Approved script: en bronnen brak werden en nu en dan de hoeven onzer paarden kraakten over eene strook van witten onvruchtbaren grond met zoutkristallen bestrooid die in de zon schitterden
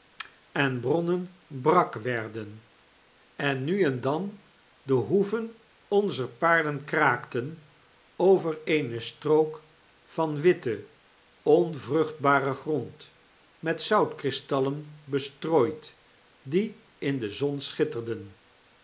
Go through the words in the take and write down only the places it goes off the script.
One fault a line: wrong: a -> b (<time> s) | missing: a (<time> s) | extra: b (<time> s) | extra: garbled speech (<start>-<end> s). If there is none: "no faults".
no faults